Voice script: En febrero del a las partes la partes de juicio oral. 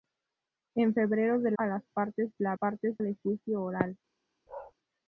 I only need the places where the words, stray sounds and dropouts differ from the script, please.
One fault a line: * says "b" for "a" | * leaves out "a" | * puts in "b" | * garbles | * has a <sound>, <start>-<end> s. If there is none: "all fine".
* has a bark, 4.5-4.7 s